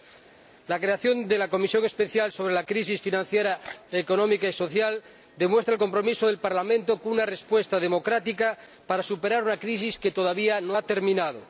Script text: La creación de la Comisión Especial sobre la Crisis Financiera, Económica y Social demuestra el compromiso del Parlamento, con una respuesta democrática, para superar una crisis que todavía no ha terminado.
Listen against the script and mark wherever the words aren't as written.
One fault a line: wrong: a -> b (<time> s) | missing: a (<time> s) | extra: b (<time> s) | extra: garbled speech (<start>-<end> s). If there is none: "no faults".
no faults